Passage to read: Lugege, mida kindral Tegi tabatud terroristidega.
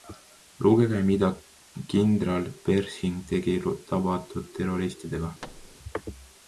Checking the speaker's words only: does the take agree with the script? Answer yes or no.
no